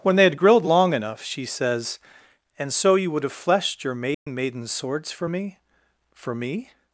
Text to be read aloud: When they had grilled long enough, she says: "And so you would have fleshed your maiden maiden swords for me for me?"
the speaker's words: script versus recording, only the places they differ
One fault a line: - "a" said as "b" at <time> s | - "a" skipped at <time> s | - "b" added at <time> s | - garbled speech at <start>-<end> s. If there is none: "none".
none